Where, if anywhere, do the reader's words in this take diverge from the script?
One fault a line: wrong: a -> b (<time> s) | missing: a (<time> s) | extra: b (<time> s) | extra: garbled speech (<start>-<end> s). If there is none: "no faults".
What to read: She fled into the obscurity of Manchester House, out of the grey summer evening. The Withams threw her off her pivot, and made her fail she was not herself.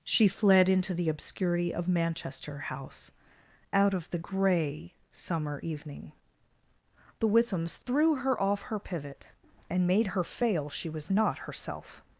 no faults